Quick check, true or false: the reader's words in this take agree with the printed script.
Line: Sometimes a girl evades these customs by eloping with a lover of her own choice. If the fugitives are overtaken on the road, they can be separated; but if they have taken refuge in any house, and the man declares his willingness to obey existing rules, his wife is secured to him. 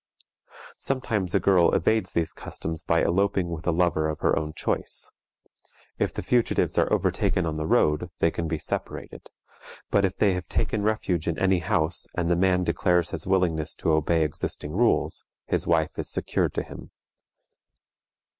true